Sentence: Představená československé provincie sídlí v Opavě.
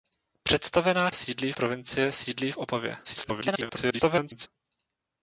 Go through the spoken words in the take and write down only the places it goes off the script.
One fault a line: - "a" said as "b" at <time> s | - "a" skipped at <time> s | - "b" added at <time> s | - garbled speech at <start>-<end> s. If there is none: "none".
- "československé" said as "sídlí" at 1.1 s
- garbled speech at 3.0-4.5 s